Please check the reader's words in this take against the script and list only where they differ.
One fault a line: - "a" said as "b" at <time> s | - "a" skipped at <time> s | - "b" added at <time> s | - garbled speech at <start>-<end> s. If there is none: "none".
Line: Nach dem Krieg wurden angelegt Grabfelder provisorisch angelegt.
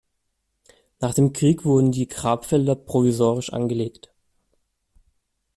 - "angelegt" said as "die" at 1.9 s